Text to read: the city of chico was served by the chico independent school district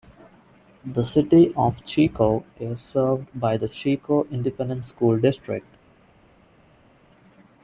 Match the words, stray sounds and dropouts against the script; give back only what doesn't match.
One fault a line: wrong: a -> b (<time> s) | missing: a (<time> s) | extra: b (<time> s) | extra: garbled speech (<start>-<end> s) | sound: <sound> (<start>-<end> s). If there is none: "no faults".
wrong: was -> is (2.6 s)